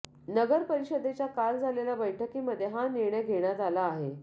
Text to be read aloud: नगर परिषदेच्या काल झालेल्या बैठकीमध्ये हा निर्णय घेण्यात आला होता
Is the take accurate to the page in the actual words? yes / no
no